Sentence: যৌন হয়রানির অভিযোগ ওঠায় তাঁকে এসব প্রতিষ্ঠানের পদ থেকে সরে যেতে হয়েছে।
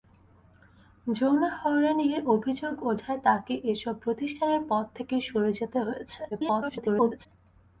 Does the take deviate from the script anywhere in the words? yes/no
yes